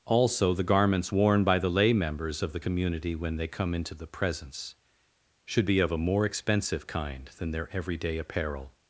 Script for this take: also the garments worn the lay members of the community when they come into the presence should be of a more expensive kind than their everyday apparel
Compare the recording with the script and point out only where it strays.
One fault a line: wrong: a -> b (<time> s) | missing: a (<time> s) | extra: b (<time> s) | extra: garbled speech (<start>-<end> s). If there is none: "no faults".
extra: by (1.4 s)